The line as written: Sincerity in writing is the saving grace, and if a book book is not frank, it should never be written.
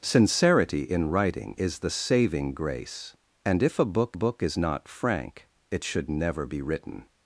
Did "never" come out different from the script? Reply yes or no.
no